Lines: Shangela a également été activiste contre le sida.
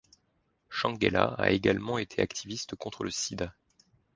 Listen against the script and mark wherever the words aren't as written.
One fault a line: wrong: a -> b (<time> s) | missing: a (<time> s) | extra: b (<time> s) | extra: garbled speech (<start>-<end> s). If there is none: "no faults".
no faults